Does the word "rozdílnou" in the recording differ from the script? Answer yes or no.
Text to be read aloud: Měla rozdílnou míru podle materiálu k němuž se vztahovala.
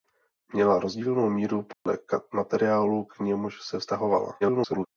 no